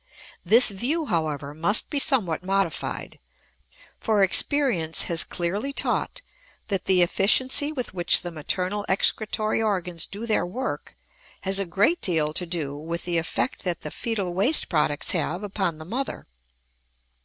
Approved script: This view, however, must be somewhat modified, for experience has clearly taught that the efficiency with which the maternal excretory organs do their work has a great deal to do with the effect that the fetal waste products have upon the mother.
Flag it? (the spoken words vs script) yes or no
no